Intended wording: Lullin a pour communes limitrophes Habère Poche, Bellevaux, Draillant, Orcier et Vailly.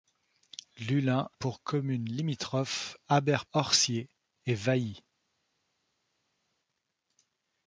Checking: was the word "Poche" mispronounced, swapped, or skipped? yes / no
yes